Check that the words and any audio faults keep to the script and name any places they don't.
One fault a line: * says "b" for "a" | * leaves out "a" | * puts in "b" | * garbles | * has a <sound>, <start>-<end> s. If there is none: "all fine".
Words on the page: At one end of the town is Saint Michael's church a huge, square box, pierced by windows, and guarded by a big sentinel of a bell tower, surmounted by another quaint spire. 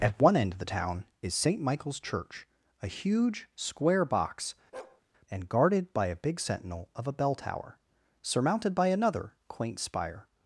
* leaves out "pierced by windows"
* has a bark, 4.7-5.0 s